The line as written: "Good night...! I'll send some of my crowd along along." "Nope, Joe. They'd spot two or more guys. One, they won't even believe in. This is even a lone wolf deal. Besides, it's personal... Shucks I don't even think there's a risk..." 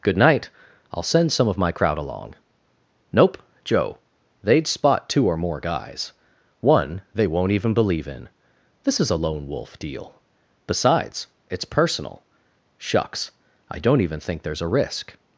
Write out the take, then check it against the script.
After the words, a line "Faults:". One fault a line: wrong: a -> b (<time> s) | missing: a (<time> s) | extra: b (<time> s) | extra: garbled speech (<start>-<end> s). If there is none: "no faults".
"Good night...! I'll send some of my crowd along." "Nope, Joe. They'd spot two or more guys. One, they won't even believe in. This is a lone wolf deal. Besides, it's personal... Shucks I don't even think there's a risk..."
Faults:
missing: along (2.4 s)
missing: even (9.1 s)